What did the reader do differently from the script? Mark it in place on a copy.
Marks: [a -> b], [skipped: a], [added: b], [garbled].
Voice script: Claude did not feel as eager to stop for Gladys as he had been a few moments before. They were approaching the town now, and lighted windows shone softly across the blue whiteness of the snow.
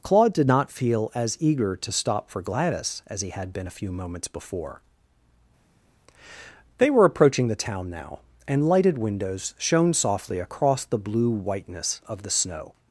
Claude did not feel as eager to stop for Gladys as he had been a few moments before. They were approaching the town now, and lighted windows shone softly across the blue whiteness of the snow.